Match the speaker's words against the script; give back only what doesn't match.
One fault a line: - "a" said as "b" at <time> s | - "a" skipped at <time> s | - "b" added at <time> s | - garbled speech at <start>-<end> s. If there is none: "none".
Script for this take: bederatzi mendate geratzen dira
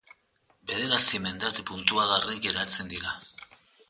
- "puntuagarri" added at 1.7 s